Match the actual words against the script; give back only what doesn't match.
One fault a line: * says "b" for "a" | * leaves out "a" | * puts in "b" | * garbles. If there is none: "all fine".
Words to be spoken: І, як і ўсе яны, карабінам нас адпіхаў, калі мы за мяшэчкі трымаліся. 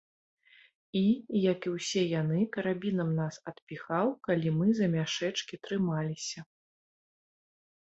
all fine